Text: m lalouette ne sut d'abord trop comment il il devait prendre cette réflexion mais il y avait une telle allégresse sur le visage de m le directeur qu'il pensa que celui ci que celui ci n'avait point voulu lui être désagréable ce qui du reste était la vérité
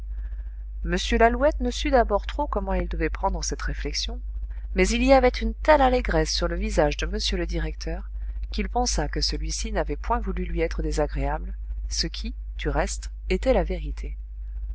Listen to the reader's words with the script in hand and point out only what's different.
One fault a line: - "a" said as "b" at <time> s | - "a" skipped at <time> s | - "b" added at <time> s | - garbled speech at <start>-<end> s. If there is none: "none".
- "il" skipped at 2.9 s
- "que celui ci" skipped at 9.7 s